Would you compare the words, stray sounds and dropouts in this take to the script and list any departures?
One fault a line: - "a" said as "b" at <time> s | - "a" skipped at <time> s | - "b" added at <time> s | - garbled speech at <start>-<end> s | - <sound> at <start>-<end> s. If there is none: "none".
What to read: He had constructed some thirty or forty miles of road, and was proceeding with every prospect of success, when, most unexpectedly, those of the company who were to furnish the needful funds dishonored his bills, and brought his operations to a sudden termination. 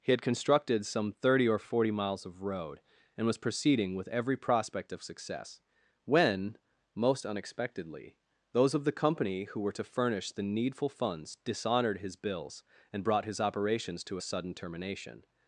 none